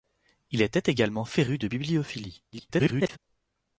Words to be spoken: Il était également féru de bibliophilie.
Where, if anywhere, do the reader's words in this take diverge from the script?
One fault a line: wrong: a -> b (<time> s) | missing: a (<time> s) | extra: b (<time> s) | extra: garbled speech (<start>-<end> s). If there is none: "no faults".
extra: garbled speech (2.5-3.2 s)